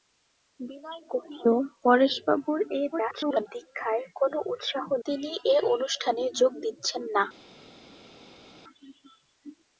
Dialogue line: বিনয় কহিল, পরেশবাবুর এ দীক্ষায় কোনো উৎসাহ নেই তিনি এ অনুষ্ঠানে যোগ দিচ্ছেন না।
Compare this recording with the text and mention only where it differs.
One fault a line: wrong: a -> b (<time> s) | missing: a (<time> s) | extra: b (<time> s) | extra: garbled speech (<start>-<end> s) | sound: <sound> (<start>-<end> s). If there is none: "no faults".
extra: garbled speech (2.9-3.5 s)
missing: নেই (4.9 s)